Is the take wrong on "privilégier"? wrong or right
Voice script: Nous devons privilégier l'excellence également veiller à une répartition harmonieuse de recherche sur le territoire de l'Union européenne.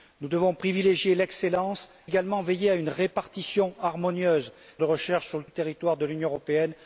right